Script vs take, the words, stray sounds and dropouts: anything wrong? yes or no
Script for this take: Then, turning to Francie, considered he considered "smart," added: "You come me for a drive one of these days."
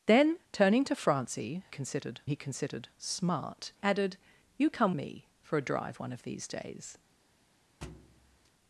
yes